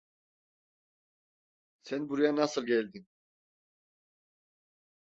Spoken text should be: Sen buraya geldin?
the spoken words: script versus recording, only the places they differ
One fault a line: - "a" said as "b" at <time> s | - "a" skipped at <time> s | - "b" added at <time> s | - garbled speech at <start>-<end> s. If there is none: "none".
- "nasıl" added at 2.4 s